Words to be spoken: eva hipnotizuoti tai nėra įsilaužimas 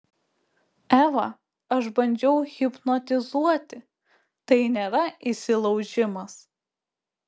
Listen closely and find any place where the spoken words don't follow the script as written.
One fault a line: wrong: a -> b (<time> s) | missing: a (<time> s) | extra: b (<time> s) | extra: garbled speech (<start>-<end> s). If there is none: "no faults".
extra: aš bandžiau (1.8 s)